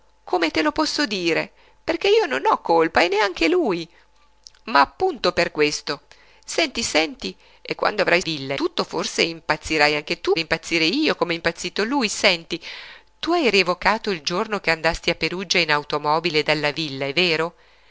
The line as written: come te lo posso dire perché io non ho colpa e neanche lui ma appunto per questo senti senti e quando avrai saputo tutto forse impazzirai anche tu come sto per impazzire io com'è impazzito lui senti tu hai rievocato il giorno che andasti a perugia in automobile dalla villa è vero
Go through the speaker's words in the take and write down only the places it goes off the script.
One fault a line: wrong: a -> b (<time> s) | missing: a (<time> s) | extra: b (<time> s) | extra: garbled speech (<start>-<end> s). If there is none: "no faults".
wrong: saputo -> villa (8.2 s)
missing: come sto per (10.4 s)